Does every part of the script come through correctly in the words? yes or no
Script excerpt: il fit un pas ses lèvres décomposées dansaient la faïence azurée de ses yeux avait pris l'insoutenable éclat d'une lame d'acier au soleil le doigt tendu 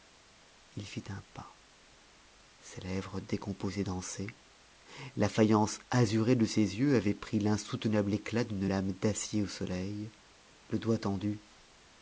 yes